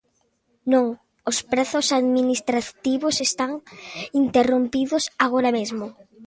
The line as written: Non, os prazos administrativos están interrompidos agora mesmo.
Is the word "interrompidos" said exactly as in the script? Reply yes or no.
yes